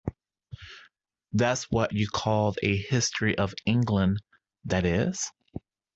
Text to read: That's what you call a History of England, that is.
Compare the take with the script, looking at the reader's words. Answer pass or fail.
pass